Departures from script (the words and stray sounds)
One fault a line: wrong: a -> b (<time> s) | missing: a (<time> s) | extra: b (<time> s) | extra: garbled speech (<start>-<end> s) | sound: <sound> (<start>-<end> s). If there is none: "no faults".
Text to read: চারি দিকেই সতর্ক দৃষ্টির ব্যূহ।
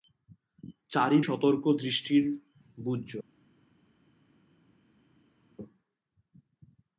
missing: দিকেই (1.2 s)